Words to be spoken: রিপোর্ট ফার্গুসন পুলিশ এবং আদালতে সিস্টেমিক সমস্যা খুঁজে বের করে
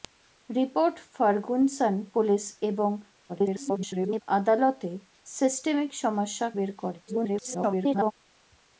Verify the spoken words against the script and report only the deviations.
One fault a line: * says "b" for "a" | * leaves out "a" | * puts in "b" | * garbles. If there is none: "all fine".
* garbles
* leaves out "খুঁজে"
* garbles